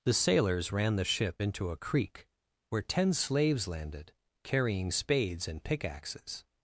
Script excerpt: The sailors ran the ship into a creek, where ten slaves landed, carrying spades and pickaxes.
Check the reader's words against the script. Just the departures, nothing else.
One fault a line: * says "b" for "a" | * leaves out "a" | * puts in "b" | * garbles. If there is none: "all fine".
all fine